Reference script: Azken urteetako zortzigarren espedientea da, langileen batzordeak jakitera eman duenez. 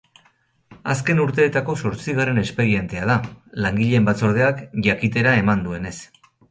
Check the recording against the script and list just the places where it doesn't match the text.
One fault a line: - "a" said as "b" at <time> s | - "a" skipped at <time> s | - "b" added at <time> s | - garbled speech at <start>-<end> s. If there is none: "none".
none